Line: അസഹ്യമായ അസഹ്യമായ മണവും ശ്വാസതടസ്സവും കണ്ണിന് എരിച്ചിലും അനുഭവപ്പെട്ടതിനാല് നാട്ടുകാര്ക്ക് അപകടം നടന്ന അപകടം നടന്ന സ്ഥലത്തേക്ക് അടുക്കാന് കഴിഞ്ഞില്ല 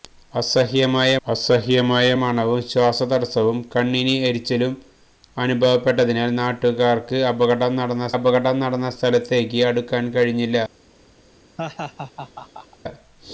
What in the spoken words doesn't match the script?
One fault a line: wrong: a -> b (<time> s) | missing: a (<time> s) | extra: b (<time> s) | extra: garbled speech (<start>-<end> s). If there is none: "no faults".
no faults